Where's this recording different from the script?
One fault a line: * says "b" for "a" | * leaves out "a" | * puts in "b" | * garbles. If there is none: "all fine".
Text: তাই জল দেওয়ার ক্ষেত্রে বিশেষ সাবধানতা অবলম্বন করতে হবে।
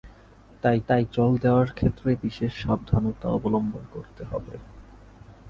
* puts in "তাই"